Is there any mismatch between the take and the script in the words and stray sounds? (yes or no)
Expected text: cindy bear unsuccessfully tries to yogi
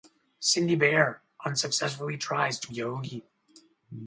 no